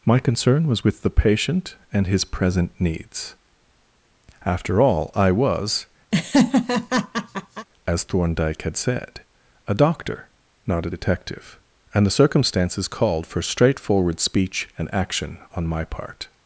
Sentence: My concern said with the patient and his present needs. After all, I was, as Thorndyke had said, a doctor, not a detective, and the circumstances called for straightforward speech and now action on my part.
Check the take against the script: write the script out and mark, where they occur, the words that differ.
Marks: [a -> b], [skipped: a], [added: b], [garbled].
My concern [said -> was] with the patient and his present needs. After all, I was, as Thorndyke had said, a doctor, not a detective, and the circumstances called for straightforward speech and [skipped: now] action on my part.